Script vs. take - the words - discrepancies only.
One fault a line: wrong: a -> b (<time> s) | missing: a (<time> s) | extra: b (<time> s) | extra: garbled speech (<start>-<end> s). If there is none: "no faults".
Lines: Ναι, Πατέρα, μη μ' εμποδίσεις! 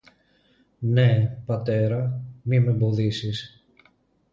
no faults